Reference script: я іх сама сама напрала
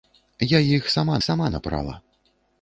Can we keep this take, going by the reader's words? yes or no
yes